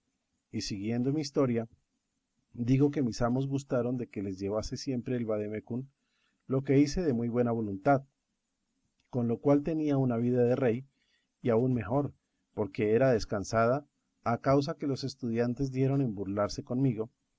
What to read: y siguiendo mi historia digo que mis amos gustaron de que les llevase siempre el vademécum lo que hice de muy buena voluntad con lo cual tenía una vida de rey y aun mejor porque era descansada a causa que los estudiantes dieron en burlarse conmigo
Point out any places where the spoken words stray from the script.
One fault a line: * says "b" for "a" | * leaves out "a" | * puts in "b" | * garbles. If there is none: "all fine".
all fine